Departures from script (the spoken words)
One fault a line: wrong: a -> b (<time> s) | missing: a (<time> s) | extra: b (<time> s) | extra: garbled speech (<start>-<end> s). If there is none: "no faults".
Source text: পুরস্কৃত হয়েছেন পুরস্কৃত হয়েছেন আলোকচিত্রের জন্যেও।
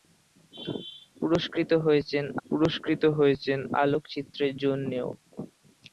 no faults